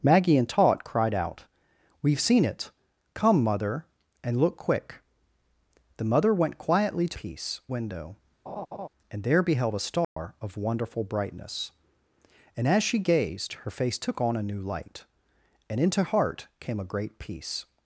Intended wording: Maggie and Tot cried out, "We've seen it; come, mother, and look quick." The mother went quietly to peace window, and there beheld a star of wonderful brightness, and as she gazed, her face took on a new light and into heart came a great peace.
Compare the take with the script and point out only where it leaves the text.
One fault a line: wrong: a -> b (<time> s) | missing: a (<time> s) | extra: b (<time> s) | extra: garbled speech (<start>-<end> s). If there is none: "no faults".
no faults